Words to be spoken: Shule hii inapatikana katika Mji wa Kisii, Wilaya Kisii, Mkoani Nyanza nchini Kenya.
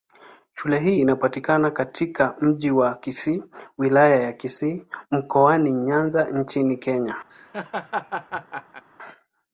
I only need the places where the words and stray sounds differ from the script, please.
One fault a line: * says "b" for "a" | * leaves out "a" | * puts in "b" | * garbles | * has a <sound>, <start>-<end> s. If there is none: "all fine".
* puts in "ya"
* has a laugh, 7.3-8.8 s